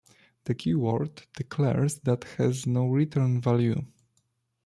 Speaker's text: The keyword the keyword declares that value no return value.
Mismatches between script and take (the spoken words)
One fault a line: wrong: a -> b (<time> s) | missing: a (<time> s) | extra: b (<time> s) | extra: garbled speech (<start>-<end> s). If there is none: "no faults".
missing: the keyword (1.2 s)
wrong: value -> has (2.4 s)